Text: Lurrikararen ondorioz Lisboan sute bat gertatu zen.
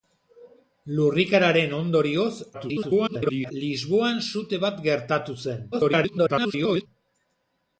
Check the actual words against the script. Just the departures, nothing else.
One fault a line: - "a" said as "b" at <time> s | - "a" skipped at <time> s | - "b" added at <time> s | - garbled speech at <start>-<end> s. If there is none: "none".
- garbled speech at 2.5-3.5 s
- garbled speech at 5.7-6.9 s